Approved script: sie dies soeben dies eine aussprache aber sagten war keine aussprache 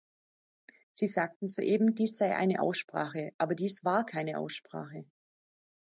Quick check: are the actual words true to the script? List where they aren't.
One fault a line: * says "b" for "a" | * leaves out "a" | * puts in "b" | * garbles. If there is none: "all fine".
* says "sagten" for "dies"
* puts in "sei"
* says "dies" for "sagten"